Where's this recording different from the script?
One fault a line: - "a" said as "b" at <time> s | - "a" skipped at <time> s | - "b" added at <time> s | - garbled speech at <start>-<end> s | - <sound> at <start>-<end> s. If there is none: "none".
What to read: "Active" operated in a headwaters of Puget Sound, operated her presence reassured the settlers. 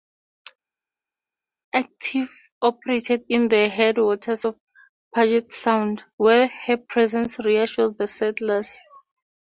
- "a" said as "the" at 3.5 s
- "operated" said as "where" at 6.2 s